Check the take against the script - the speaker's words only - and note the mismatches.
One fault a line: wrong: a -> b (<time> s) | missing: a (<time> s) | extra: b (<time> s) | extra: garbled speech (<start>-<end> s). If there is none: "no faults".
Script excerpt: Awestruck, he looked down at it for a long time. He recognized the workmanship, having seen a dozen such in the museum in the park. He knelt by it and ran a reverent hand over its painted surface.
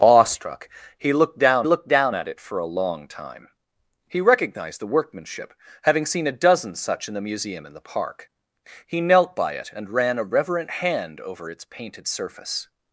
extra: looked down (1.6 s)